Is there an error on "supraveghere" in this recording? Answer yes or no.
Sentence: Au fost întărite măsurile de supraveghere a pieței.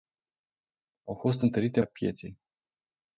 yes